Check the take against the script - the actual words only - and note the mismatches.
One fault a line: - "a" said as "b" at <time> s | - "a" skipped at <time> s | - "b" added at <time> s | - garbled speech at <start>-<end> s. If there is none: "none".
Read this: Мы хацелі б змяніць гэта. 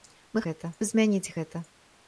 - "хацелі" said as "гэта" at 0.5 s